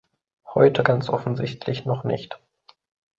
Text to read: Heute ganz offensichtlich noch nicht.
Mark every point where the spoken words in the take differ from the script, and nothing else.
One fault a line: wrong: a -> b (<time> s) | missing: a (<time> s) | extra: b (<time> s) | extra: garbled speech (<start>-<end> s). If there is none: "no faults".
no faults